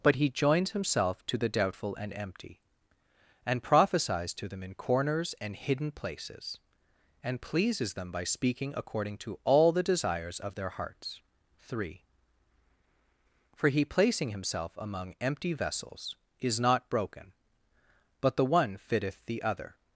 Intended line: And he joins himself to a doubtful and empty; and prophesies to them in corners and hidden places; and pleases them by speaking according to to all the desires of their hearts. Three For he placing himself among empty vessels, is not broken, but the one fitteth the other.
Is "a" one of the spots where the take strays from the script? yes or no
yes